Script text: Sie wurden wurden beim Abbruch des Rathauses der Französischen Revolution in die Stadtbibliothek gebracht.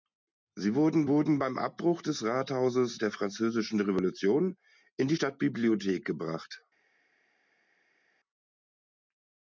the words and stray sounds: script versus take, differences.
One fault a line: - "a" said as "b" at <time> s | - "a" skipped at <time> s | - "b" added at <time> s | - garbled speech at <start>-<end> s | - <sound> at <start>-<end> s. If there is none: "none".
none